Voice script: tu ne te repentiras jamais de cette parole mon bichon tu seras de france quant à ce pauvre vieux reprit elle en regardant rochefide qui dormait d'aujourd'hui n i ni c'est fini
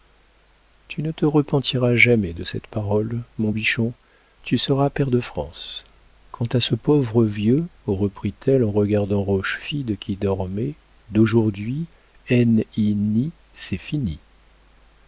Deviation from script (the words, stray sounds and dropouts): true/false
true